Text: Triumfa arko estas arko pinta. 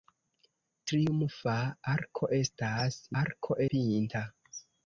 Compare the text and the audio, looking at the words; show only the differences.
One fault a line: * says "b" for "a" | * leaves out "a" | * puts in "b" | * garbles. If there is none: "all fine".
all fine